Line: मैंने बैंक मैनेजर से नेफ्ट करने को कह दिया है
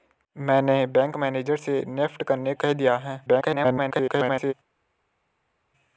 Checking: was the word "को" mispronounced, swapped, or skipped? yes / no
yes